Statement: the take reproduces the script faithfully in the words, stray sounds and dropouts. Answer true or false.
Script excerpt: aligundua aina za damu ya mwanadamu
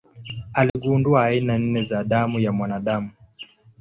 false